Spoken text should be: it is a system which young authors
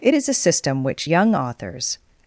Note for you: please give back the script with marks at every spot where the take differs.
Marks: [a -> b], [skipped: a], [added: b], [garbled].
it is a system which young authors